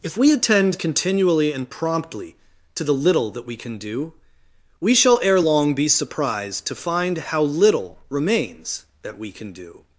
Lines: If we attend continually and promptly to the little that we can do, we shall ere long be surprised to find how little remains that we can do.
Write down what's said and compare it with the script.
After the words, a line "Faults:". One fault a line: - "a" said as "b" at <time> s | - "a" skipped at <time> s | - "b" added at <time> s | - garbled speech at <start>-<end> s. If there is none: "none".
If we attend continually and promptly to the little that we can do, we shall ere long be surprised to find how little remains that we can do.
Faults:
none